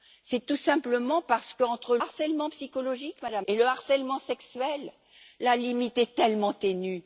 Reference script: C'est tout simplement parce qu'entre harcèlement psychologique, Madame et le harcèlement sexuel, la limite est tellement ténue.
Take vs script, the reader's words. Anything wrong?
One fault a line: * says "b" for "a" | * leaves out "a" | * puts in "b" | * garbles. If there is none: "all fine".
all fine